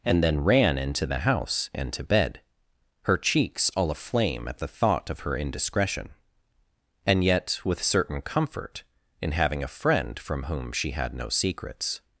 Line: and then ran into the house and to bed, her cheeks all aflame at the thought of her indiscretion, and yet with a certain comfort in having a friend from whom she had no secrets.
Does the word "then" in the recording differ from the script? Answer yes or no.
no